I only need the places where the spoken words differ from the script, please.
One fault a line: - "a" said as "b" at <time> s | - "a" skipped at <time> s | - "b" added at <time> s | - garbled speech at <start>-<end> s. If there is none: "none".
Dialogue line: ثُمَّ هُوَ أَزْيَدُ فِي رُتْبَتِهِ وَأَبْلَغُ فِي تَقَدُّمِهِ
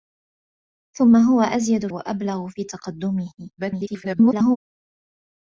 - "فِي رُتْبَتِهِ" skipped at 1.9 s
- garbled speech at 3.6-4.6 s